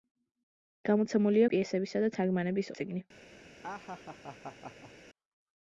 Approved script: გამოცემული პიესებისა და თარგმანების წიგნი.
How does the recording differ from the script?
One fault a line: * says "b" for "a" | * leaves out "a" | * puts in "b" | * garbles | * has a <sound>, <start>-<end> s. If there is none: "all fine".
* has a laugh, 3.6-4.9 s